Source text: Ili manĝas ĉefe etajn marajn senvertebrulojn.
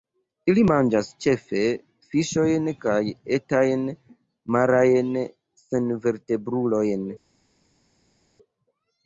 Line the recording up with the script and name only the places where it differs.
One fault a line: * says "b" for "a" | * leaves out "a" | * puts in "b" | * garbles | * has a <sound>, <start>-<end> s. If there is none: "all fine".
* puts in "fiŝojn kaj"